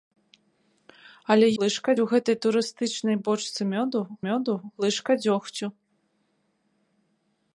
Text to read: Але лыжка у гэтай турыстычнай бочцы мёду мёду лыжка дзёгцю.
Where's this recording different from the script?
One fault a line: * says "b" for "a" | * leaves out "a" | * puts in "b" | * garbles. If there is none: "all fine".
all fine